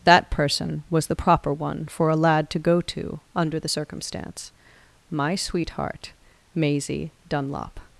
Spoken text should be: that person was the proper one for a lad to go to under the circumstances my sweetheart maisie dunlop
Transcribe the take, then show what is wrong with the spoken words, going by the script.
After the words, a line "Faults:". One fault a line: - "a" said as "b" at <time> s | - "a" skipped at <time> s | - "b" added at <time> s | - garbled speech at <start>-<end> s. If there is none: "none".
that person was the proper one for a lad to go to under the circumstance my sweetheart maisie dunlop
Faults:
- "circumstances" said as "circumstance" at 3.7 s